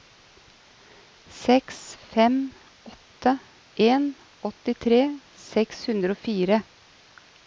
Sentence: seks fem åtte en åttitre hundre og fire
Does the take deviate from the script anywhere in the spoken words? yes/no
yes